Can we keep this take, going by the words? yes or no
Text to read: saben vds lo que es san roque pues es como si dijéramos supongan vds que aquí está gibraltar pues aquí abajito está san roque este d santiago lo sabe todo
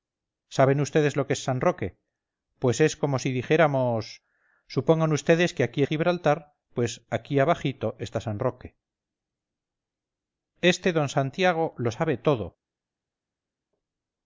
no